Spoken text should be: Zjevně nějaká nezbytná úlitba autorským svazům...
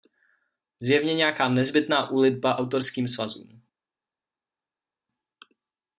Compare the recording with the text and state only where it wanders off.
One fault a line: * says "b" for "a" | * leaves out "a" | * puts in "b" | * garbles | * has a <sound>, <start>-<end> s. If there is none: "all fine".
all fine